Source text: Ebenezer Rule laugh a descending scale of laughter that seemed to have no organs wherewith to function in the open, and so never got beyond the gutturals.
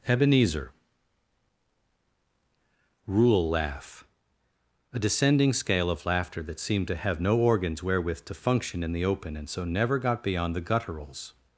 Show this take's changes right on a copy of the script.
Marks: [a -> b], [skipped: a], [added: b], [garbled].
Ebenezer Rule laugh a descending scale of laughter that seemed to have no organs wherewith to function in the open, and so never got beyond the gutturals.